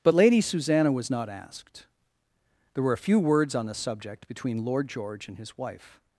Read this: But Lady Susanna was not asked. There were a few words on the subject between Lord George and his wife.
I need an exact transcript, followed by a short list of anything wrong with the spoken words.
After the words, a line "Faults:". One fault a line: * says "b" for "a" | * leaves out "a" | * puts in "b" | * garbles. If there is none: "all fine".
But Lady Susanna was not asked. There were a few words on the subject between Lord George and his wife.
Faults:
all fine